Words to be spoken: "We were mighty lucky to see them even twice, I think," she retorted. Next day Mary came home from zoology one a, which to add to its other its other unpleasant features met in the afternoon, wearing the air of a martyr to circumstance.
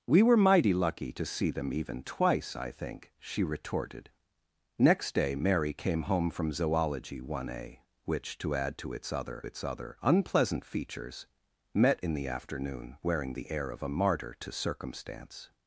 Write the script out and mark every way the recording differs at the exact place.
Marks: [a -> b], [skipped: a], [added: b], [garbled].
"We were mighty lucky to see them even twice, I think," she retorted. Next day Mary came home from zoology one a, which to add to its other its other unpleasant features met in the afternoon, wearing the air of a martyr to circumstance.